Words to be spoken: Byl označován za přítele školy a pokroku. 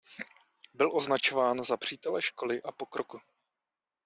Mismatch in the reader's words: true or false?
false